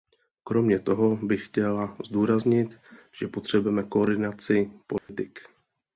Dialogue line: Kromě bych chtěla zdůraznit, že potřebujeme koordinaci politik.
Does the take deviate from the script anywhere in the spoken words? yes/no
yes